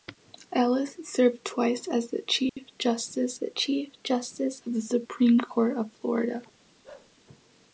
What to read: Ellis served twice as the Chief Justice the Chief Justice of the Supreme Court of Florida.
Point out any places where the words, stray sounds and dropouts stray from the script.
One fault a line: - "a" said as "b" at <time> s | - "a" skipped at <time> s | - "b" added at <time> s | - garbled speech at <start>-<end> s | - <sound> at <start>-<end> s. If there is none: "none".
- dropout at 2.5-2.6 s
- bark at 6.8-7.1 s